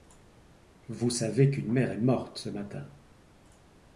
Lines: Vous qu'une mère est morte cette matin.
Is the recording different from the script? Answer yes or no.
yes